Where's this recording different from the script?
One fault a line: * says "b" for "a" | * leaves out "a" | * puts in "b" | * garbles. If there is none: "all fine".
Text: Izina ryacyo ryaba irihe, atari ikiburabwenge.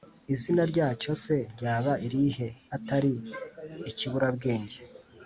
* puts in "se"